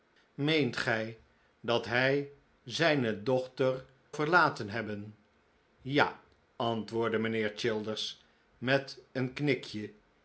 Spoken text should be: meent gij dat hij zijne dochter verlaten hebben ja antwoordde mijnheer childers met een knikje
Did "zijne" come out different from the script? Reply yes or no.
no